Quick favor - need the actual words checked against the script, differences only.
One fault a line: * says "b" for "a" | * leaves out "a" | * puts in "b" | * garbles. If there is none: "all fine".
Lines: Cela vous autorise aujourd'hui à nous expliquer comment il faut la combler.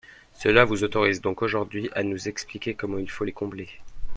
* puts in "donc"
* says "les" for "la"